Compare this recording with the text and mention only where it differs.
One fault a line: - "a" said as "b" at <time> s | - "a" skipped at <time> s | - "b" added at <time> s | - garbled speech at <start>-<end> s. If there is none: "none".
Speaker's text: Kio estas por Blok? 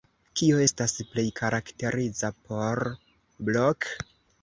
- "plej karakteriza" added at 1.1 s